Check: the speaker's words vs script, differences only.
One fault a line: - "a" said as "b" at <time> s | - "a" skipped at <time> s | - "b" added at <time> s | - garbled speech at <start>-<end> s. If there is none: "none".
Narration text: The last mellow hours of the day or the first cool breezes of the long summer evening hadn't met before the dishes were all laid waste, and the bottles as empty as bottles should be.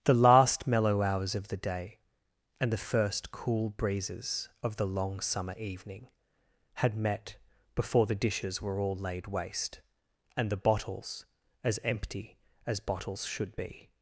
- "or" said as "and" at 2.6 s
- "hadn't" said as "had" at 6.8 s